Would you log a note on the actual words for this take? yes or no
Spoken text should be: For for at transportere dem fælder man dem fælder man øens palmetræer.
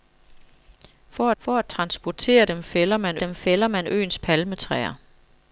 no